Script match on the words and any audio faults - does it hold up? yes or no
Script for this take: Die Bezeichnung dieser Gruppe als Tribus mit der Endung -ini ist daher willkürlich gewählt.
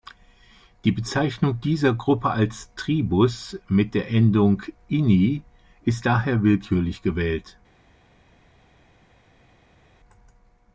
yes